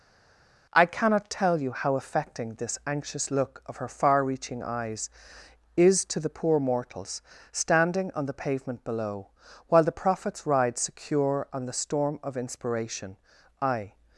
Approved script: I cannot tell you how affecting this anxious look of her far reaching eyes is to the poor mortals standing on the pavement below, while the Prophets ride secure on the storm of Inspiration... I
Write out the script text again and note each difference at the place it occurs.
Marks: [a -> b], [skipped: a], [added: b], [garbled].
I cannot tell you how affecting this anxious look of her far reaching eyes is to the poor mortals standing on the pavement below, while the Prophets ride secure on the storm of Inspiration... I